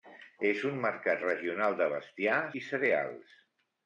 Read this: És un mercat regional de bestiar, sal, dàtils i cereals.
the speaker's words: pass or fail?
fail